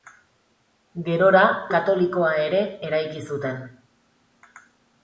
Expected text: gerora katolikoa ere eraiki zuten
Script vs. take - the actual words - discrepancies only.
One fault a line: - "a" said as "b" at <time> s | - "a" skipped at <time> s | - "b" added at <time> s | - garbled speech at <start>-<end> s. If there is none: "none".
none